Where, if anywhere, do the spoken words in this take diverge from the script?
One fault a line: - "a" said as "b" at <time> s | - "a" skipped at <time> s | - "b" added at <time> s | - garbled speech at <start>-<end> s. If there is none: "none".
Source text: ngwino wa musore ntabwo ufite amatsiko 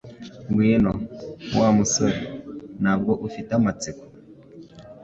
none